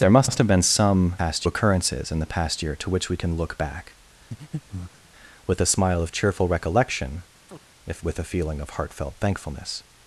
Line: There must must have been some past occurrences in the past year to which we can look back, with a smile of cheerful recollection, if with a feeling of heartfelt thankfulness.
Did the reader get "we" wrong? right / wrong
right